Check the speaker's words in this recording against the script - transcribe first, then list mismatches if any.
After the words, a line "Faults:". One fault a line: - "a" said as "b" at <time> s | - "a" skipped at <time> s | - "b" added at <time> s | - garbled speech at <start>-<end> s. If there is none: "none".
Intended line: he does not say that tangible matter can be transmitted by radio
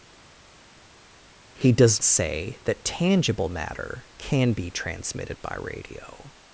he does say that tangible matter can be transmitted by radio
Faults:
- "not" skipped at 2.0 s